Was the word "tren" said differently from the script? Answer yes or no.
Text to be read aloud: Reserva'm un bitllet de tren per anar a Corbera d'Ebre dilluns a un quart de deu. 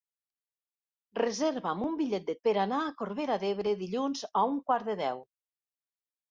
yes